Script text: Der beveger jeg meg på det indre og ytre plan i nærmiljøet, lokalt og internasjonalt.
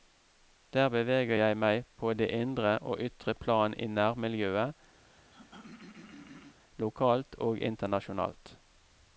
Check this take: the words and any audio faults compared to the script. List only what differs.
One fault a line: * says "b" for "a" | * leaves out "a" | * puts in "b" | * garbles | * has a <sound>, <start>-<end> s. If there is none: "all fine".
* has a throat clearing, 5.0-6.6 s